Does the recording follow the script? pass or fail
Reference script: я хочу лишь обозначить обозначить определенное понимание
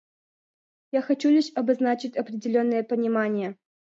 fail